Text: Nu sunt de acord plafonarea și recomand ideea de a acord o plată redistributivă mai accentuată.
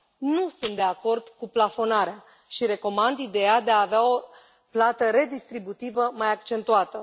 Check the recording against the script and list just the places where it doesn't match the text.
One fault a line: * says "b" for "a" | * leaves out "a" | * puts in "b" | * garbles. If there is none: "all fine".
* puts in "cu"
* says "avea" for "acord"